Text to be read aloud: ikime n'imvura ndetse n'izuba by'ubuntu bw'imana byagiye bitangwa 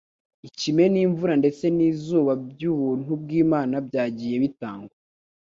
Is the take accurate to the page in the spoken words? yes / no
yes